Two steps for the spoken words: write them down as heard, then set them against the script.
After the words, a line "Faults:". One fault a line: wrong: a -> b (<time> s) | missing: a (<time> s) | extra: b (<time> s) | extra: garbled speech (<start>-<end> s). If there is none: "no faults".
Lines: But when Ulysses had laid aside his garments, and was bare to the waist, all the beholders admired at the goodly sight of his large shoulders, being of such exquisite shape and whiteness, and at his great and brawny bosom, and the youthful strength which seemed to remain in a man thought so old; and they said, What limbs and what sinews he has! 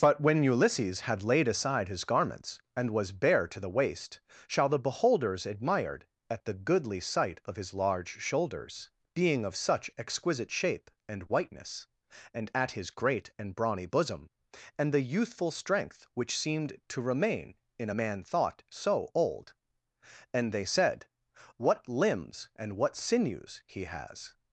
But when Ulysses had laid aside his garments, and was bare to the waist, shall the beholders admired at the goodly sight of his large shoulders, being of such exquisite shape and whiteness, and at his great and brawny bosom, and the youthful strength which seemed to remain in a man thought so old; and they said, What limbs and what sinews he has!
Faults:
wrong: all -> shall (4.5 s)